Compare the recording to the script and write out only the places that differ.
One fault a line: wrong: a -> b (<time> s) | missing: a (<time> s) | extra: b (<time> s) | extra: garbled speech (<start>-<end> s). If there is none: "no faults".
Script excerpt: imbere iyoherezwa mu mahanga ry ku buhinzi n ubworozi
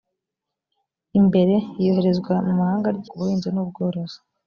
no faults